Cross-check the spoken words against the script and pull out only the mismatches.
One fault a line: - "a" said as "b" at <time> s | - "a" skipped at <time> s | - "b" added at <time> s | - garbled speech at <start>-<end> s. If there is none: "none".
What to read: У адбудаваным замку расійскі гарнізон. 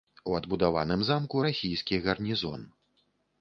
none